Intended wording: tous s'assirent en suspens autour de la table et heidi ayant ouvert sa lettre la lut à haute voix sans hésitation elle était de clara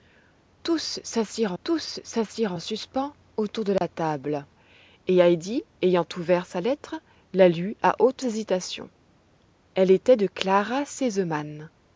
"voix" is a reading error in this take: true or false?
true